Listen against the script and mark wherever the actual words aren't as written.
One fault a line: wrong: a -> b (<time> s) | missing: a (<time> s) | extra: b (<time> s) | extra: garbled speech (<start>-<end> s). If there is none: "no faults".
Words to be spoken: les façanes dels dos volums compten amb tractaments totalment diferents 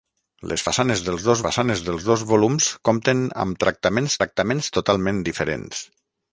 extra: façanes dels dos (1.5 s)
extra: tractaments (4.2 s)